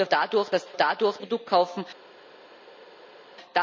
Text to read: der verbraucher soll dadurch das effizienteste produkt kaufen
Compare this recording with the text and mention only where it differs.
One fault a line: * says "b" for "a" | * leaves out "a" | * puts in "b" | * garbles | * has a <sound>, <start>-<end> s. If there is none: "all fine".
* leaves out "verbraucher soll"
* says "dadurch" for "effizienteste"